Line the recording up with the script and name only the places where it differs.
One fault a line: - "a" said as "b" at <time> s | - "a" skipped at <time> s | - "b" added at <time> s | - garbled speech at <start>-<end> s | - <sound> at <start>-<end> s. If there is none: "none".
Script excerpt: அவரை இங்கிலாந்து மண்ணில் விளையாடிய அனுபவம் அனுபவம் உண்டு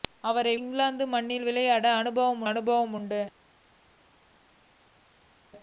none